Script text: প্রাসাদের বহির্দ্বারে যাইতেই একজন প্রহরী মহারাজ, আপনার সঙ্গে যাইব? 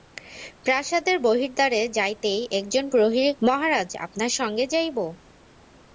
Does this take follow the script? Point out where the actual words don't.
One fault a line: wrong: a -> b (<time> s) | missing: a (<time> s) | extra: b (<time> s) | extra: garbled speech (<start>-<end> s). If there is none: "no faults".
no faults